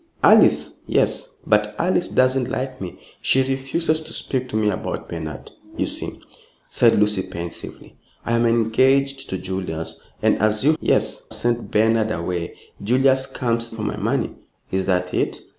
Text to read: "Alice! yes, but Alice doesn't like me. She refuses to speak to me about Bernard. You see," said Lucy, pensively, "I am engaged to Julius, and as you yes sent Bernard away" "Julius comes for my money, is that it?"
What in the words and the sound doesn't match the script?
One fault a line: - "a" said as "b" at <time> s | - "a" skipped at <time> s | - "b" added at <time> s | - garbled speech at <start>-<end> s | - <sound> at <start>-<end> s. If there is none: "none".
none